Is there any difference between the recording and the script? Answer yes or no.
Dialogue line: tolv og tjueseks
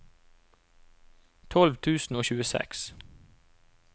yes